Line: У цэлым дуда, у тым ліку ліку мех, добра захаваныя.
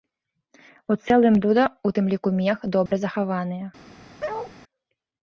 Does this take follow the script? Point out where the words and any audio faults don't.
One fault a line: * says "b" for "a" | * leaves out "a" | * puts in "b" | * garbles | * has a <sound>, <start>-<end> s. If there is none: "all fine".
* leaves out "ліку"
* has a dropout, 2.9-2.9 s
* has a bark, 4.2-4.5 s